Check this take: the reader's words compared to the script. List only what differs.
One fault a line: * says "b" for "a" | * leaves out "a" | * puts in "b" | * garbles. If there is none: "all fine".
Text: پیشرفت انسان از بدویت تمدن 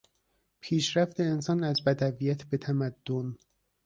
* puts in "به"